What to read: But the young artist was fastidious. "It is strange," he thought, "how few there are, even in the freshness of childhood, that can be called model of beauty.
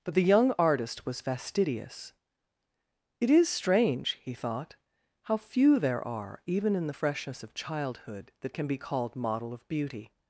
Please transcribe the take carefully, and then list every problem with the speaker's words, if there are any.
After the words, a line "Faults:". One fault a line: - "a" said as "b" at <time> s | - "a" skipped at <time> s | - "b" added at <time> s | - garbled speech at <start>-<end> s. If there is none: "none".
But the young artist was fastidious. "It is strange," he thought, "how few there are, even in the freshness of childhood, that can be called model of beauty.
Faults:
none